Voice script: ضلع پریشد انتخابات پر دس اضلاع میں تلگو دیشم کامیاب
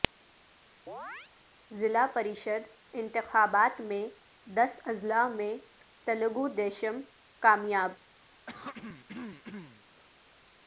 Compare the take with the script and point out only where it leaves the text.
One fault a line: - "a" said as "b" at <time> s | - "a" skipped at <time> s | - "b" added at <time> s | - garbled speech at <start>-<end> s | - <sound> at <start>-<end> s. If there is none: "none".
- chirp at 0.9-1.3 s
- "پر" said as "میں" at 3.8 s
- throat clearing at 8.5-9.8 s